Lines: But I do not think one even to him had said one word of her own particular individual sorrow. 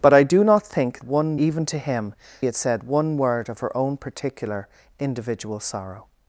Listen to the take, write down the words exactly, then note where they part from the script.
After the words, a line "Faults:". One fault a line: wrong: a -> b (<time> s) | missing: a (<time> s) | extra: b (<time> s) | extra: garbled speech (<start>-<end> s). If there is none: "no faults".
But I do not think one even to him had said one word of her own particular individual sorrow.
Faults:
no faults